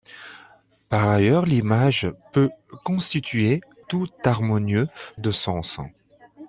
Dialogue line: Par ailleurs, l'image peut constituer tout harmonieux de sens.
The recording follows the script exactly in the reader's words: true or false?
true